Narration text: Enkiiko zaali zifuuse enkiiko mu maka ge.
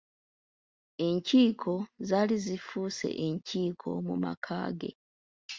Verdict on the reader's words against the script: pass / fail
pass